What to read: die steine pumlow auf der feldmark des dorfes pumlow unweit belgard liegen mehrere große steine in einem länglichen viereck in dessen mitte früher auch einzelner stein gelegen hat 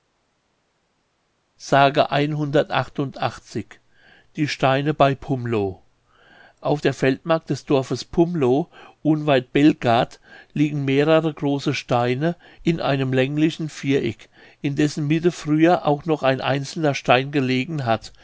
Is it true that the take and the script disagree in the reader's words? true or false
true